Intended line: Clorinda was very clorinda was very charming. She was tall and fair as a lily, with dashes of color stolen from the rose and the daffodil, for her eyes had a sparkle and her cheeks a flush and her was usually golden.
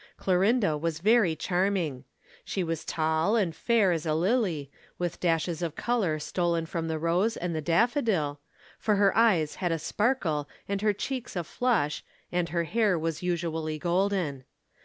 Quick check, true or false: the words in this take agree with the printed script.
false